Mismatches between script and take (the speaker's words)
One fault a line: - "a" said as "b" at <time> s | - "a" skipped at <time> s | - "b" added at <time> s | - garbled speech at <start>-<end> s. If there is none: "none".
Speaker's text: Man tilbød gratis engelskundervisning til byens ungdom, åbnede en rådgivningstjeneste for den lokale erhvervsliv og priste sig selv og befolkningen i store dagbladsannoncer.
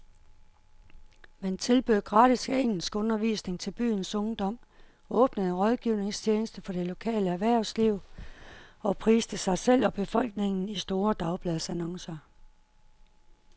- "den" said as "det" at 6.7 s